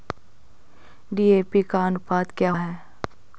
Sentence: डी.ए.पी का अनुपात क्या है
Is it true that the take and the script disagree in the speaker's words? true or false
false